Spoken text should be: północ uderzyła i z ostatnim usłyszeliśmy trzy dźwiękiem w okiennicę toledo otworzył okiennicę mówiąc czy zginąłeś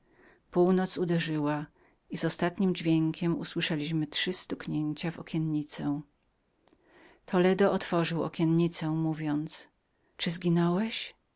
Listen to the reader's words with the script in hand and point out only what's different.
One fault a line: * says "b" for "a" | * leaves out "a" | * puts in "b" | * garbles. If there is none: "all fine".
* puts in "dźwiękiem"
* says "stuknięcia" for "dźwiękiem"